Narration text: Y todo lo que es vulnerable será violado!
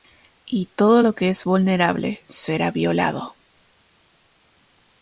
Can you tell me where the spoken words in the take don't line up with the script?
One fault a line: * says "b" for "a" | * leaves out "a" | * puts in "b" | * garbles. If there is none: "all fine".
all fine